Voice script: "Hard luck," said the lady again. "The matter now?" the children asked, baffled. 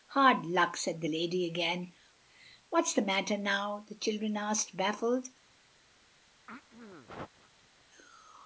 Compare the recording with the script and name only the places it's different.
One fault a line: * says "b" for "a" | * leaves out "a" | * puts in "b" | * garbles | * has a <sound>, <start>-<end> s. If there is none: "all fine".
* puts in "What's"
* has a throat clearing, 6.5-7.8 s